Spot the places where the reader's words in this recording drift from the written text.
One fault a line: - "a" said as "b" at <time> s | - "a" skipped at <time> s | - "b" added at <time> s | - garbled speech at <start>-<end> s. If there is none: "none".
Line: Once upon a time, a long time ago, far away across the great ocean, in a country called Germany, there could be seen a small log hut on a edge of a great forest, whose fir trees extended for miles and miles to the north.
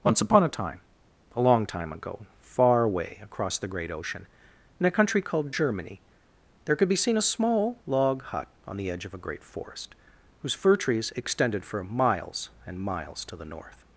- "a" said as "the" at 8.8 s